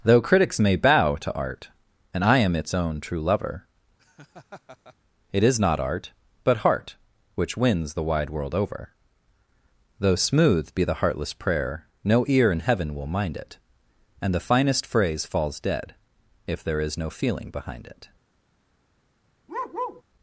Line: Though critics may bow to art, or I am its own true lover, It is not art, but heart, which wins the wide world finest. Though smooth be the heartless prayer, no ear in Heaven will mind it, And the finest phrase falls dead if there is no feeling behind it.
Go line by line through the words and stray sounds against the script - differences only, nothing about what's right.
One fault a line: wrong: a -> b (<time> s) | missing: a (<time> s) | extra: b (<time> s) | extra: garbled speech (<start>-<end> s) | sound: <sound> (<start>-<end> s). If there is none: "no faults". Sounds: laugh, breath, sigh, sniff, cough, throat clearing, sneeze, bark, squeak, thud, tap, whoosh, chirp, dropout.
wrong: or -> and (2.1 s)
sound: laugh (4.0-5.0 s)
wrong: finest -> over (8.5 s)
sound: bark (19.5-20.0 s)